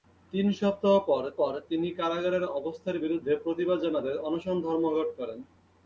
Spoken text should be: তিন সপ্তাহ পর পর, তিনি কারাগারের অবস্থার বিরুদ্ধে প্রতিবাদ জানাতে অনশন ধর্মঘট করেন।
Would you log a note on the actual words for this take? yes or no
no